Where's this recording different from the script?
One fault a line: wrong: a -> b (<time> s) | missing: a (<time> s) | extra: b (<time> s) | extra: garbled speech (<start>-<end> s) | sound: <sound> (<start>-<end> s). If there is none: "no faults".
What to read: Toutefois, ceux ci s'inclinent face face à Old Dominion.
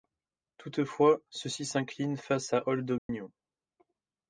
missing: face (2.5 s)
sound: dropout (3.0-3.1 s)